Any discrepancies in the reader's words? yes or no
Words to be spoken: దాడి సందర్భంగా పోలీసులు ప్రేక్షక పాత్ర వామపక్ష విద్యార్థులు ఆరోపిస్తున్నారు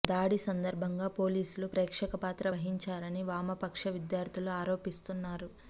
yes